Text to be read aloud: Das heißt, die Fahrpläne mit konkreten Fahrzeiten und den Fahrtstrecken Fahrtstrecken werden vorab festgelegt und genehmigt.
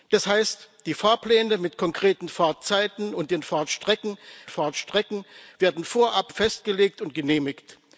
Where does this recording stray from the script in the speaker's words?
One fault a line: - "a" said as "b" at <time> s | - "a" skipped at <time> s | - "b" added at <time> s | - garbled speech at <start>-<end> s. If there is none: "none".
none